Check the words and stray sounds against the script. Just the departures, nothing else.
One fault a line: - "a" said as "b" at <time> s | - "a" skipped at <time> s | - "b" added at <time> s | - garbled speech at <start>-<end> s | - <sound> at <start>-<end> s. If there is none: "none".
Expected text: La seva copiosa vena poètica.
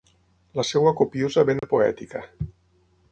- dropout at 1.6-1.6 s